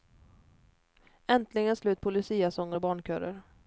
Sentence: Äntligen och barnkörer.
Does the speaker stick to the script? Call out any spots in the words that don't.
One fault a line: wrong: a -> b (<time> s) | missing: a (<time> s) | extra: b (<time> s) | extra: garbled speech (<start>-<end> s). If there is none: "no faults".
extra: slut på luciasånger (1.8 s)